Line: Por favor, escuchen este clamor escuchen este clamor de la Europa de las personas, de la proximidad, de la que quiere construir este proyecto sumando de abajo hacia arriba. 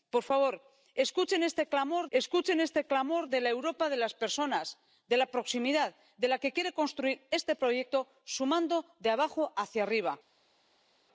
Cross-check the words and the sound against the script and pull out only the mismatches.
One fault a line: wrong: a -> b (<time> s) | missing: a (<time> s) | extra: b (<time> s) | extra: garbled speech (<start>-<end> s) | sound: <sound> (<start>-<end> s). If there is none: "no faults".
no faults